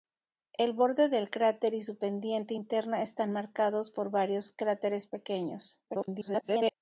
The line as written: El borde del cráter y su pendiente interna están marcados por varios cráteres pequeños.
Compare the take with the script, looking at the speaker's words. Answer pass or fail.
fail